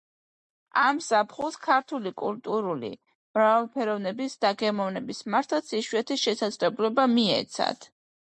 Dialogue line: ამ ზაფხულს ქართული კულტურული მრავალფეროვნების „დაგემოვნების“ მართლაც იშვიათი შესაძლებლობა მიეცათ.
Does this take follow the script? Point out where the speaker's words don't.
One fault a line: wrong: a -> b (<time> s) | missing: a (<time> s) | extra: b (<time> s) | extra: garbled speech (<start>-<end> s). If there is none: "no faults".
no faults